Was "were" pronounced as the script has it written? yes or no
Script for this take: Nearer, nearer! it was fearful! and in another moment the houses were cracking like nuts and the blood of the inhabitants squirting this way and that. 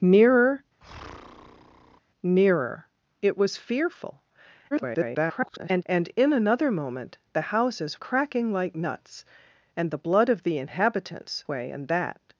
no